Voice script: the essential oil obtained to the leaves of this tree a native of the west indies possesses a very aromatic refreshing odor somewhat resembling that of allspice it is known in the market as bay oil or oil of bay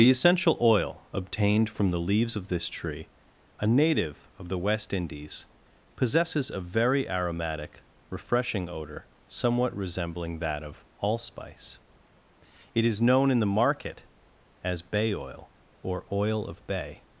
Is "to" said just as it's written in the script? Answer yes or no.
no